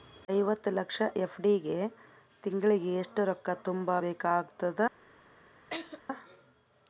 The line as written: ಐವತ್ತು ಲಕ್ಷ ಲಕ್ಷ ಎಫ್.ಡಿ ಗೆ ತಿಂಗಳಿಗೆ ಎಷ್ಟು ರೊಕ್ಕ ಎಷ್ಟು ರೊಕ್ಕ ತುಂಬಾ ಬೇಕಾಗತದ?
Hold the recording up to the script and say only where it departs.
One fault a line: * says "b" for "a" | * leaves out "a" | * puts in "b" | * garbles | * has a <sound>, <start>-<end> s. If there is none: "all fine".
* leaves out "ಲಕ್ಷ"
* leaves out "ಎಷ್ಟು ರೊಕ್ಕ"
* has a laugh, 5.7-6.0 s